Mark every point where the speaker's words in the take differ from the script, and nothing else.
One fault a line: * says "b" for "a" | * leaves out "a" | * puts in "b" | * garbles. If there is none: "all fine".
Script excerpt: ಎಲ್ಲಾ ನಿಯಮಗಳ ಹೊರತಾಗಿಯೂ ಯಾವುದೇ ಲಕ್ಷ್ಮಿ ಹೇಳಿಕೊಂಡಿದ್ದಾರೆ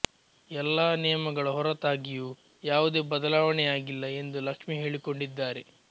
* puts in "ಬದಲಾವಣೆಯಾಗಿಲ್ಲ ಎಂದು"